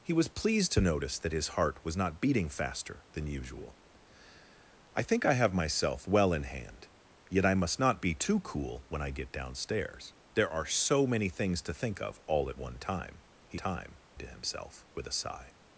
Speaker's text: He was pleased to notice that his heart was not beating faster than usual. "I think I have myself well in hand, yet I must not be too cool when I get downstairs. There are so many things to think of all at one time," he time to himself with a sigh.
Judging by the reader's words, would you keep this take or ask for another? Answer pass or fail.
pass